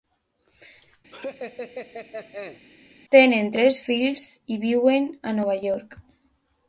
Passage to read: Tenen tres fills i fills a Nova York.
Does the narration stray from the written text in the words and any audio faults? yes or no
yes